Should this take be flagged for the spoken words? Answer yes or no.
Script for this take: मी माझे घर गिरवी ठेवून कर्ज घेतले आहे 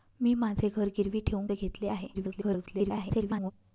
yes